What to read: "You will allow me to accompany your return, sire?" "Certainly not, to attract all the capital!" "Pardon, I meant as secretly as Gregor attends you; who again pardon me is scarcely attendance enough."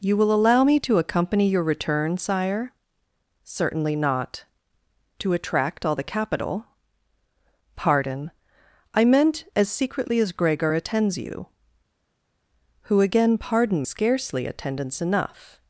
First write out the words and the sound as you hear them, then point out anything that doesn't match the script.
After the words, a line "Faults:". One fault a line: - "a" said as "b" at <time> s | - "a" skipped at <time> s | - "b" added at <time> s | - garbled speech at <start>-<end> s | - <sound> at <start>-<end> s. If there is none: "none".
"You will allow me to accompany your return, sire?" "Certainly not, to attract all the capital!" "Pardon, I meant as secretly as Gregor attends you; who again pardon scarcely attendance enough."
Faults:
- "me is" skipped at 13.8 s